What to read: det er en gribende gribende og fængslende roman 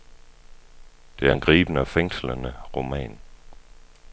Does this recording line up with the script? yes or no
no